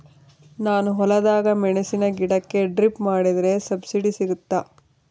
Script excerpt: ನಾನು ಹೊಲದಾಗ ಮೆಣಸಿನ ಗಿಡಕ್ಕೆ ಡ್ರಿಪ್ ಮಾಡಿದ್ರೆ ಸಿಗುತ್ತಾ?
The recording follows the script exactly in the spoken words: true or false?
false